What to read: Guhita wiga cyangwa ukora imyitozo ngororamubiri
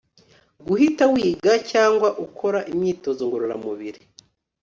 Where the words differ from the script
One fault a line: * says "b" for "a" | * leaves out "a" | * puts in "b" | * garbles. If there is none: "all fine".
all fine